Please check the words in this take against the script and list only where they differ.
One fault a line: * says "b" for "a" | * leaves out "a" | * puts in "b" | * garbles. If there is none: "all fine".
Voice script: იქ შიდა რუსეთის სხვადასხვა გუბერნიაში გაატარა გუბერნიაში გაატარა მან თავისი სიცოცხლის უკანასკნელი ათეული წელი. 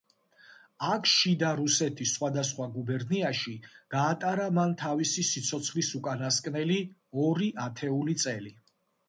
* says "აქ" for "იქ"
* leaves out "გუბერნიაში გაატარა"
* puts in "ორი"